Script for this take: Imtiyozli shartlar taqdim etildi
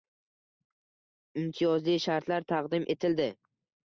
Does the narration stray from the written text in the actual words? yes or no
no